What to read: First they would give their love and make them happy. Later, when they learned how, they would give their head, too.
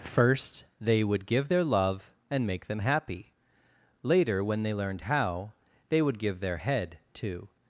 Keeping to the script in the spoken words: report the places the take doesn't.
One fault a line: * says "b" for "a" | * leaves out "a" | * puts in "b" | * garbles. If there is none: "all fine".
all fine